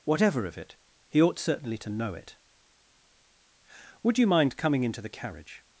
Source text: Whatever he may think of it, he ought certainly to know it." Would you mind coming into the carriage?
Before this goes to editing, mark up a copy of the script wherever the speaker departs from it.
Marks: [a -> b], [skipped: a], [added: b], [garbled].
Whatever [skipped: he may think] of it, he ought certainly to know it." Would you mind coming into the carriage?